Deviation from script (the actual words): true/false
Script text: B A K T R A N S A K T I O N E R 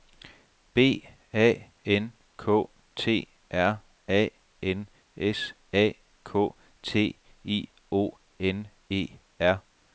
true